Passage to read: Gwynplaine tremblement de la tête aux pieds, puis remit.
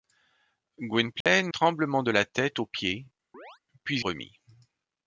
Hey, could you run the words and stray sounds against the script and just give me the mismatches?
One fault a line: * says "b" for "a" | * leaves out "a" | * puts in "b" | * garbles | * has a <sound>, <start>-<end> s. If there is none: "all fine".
* has a dropout, 1.2-1.3 s
* has a chirp, 3.3-3.6 s